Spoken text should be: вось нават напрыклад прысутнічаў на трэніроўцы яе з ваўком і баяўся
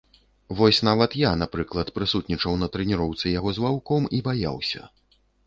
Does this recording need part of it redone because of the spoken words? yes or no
yes